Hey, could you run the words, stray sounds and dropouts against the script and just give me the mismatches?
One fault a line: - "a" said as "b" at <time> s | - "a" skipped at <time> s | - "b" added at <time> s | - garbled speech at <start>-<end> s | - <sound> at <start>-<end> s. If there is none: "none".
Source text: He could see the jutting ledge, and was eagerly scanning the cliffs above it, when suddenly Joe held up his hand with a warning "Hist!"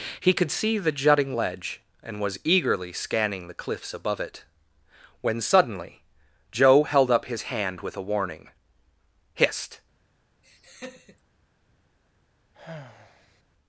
- laugh at 10.4-11.2 s
- sigh at 12.5-13.4 s